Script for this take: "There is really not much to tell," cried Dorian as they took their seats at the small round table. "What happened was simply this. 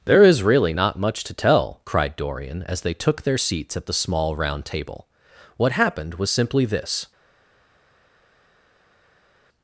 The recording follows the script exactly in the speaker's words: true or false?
true